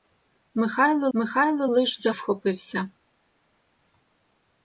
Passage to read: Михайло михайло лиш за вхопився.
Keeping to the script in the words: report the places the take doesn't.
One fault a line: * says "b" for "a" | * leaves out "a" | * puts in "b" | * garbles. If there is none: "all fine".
all fine